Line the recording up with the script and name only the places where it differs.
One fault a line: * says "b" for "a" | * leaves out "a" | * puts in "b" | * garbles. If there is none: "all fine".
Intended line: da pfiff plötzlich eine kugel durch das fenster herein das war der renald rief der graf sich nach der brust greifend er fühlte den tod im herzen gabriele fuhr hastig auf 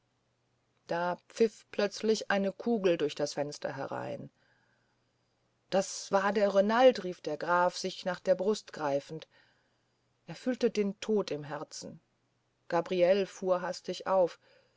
all fine